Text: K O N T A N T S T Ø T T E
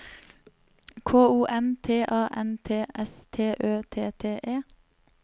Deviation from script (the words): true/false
false